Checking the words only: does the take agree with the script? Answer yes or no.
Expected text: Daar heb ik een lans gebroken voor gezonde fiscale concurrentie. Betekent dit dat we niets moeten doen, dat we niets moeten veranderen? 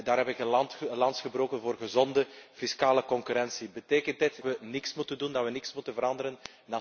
no